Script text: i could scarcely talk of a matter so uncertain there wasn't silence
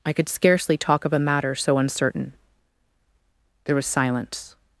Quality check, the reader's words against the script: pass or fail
fail